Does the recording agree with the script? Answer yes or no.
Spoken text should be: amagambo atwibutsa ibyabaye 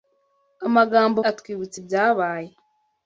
yes